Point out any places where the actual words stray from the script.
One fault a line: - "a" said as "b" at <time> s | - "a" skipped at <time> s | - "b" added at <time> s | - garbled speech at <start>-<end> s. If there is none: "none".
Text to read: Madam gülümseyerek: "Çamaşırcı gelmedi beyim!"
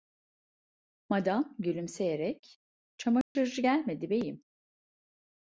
none